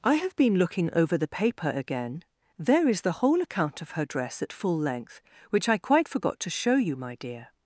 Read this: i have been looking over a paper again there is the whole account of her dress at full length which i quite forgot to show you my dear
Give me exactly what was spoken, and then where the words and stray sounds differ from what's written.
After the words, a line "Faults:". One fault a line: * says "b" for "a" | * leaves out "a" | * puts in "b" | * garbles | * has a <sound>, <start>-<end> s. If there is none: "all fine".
i have been looking over the paper again there is the whole account of her dress at full length which i quite forgot to show you my dear
Faults:
* says "the" for "a"